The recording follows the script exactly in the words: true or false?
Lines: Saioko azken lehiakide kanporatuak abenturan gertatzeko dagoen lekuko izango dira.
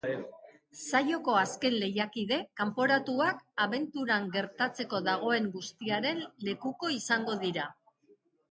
false